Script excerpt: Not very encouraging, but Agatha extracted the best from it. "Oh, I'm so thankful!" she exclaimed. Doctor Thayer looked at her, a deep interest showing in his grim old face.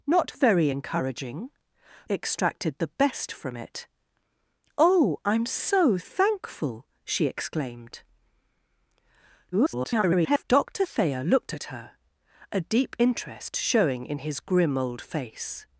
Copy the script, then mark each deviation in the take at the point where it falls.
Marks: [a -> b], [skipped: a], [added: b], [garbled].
Not very encouraging, [skipped: but Agatha] extracted the best from it. "Oh, I'm so thankful!" she exclaimed. [garbled] Doctor Thayer looked at her, a deep interest showing in his grim old face.